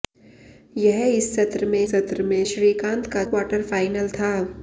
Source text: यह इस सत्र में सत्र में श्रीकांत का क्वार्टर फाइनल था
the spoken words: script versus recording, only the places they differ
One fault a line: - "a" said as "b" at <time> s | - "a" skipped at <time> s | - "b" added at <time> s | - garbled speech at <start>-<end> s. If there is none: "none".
none